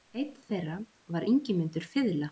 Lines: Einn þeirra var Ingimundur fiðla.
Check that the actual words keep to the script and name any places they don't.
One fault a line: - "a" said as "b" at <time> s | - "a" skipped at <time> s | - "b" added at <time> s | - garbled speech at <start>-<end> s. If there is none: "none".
none